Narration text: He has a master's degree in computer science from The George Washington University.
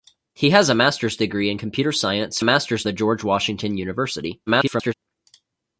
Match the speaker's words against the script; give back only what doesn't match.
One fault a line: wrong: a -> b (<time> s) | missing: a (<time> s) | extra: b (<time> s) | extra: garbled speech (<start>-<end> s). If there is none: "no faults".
wrong: from -> master's (2.4 s)
extra: garbled speech (4.5-4.9 s)